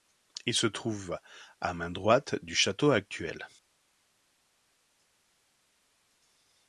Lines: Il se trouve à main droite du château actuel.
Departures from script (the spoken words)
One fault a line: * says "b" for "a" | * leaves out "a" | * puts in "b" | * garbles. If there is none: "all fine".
all fine